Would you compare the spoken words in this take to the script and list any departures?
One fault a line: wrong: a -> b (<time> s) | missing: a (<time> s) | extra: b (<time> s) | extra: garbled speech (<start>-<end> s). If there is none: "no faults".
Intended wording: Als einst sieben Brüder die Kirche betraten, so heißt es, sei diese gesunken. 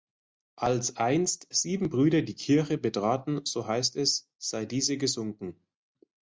no faults